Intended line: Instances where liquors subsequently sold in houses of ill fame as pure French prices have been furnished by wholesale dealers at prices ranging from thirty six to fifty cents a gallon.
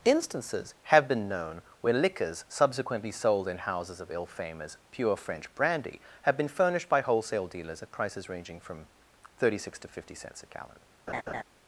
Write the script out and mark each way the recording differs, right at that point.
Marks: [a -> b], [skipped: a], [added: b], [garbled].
Instances [added: have been known] where liquors subsequently sold in houses of ill fame as pure French [prices -> brandy] have been furnished by wholesale dealers at prices ranging from thirty six to fifty cents a gallon.